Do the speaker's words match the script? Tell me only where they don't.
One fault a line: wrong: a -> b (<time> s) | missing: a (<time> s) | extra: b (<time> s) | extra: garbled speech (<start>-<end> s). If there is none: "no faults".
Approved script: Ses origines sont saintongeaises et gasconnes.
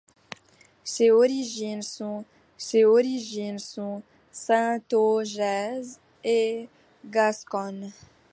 extra: ses origines sont (2.6 s)